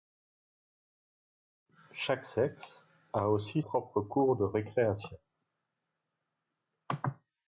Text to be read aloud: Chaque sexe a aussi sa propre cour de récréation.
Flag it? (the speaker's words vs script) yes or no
yes